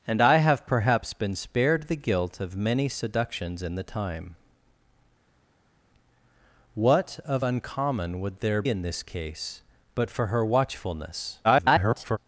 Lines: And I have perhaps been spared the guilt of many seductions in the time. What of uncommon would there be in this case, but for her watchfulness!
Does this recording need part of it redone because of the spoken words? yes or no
yes